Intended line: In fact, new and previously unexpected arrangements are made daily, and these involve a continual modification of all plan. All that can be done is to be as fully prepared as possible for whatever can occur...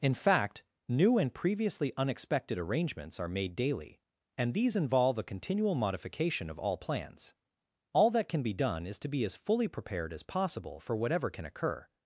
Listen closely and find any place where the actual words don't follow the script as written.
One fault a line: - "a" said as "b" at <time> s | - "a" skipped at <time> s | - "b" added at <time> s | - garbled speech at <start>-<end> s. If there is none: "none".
- "plan" said as "plans" at 6.8 s